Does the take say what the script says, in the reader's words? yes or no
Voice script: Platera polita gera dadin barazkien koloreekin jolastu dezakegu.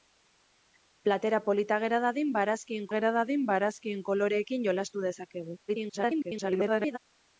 no